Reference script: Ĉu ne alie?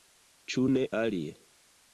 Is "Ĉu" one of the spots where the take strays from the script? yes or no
no